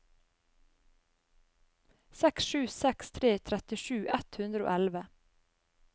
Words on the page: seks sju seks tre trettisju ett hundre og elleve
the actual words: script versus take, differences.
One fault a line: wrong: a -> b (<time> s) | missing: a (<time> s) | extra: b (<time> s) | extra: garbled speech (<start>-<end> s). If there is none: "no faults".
no faults